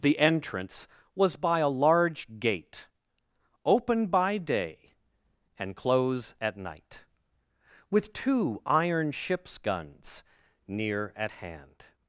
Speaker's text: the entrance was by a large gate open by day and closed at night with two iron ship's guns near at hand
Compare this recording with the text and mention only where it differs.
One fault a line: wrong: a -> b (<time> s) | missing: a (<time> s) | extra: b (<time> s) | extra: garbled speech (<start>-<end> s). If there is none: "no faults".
wrong: closed -> close (5.8 s)